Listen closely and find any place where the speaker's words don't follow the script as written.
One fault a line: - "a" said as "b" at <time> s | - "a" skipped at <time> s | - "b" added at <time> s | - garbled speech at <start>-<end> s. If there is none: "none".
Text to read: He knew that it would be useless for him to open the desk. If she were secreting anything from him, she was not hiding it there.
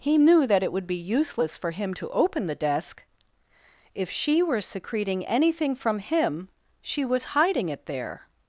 - "not" skipped at 7.4 s